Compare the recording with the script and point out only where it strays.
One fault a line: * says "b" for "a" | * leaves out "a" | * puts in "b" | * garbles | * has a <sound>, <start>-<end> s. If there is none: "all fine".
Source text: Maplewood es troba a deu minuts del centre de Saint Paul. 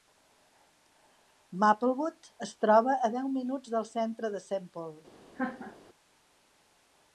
* has a laugh, 5.4-5.8 s